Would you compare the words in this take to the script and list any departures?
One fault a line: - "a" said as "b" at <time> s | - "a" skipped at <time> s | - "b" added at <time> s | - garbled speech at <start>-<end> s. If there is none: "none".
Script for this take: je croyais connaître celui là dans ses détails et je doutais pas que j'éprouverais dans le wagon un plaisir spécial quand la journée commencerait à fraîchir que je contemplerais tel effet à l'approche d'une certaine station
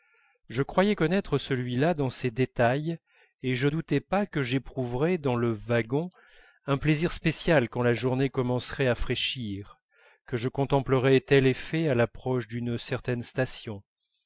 none